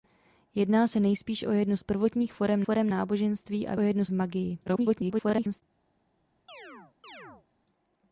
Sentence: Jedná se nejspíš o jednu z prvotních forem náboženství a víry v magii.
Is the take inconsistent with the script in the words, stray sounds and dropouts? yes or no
yes